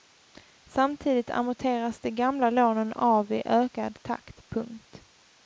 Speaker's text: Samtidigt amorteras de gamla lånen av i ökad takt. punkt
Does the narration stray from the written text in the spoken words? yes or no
no